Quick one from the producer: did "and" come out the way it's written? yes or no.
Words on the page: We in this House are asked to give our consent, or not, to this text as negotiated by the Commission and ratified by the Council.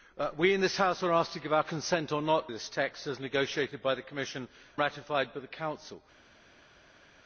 no